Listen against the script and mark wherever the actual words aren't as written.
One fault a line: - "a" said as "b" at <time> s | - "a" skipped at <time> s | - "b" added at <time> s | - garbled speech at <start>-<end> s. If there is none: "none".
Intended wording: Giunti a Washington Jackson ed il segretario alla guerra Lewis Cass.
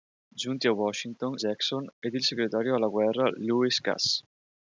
none